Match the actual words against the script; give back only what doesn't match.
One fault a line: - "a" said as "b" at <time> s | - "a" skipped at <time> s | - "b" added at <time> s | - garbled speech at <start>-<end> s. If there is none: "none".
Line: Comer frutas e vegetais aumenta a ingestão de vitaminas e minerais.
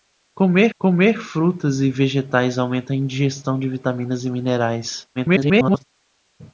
- "comer" added at 0.8 s
- garbled speech at 5.2-5.8 s